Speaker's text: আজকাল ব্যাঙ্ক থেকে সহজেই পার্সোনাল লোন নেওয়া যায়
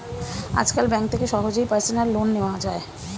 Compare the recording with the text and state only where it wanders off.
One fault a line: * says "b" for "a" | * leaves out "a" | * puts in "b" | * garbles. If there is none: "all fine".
all fine